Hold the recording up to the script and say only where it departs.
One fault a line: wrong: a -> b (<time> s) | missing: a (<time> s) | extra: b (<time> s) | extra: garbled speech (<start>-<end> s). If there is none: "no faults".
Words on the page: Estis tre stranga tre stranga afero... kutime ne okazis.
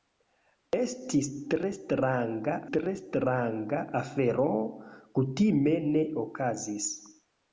no faults